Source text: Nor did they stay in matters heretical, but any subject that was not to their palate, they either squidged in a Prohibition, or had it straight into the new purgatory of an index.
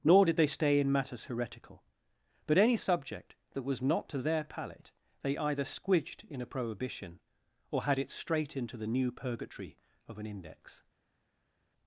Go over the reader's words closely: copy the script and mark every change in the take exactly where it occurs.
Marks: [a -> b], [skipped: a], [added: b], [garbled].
Nor did they stay in matters heretical, but any subject that was not to their palate, they either squidged in a Prohibition, or had it straight into the new purgatory of an index.